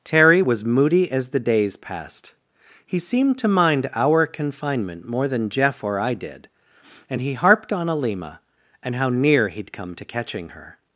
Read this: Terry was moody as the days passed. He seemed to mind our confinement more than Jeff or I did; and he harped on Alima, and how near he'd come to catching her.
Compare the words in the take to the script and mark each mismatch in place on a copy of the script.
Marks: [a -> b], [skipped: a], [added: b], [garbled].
Terry was moody as the days passed. He seemed to mind our confinement more than Jeff or I did; and he harped on Alima, and how near he'd come to catching her.